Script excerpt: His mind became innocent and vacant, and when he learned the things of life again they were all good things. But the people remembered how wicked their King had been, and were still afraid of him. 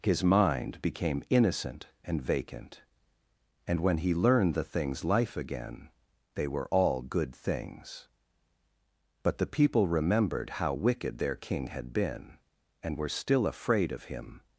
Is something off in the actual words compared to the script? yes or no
yes